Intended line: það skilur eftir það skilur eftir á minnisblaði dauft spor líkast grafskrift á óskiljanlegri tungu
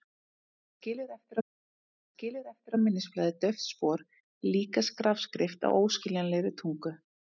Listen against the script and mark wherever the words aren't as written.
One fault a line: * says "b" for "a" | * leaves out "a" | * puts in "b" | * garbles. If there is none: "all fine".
all fine